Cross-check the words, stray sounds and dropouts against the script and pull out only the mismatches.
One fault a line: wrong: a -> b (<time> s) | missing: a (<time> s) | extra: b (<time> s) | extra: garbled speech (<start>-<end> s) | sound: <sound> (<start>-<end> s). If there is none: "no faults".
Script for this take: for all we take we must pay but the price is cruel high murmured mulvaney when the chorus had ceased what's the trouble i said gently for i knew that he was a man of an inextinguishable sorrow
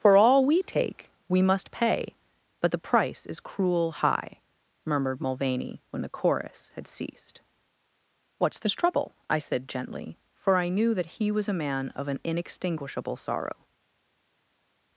wrong: the -> this (8.6 s)